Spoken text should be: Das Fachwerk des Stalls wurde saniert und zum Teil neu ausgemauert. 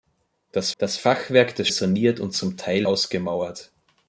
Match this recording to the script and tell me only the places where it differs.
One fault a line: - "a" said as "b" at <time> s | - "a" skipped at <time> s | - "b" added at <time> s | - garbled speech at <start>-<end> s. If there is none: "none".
- "das" added at 0.8 s
- "Stalls wurde" skipped at 1.7 s
- "neu" skipped at 2.9 s